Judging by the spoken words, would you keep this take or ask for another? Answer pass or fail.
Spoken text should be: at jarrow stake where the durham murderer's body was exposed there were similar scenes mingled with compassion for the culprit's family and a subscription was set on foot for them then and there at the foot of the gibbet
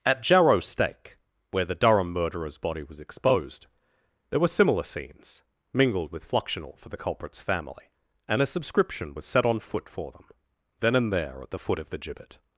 fail